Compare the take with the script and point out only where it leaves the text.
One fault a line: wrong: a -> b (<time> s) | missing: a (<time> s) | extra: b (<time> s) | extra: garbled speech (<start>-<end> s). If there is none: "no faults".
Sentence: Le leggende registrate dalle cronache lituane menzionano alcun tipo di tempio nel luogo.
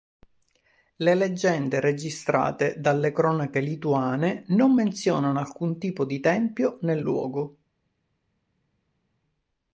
extra: non (4.5 s)